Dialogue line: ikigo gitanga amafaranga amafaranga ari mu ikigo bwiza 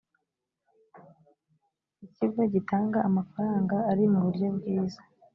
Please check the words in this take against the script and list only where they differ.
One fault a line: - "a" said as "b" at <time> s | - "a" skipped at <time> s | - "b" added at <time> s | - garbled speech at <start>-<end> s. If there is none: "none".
- "amafaranga" skipped at 3.8 s
- "ikigo" said as "buryo" at 4.3 s